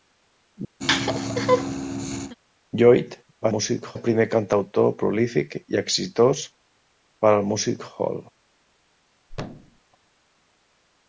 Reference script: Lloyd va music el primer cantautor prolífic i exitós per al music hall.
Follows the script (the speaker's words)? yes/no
yes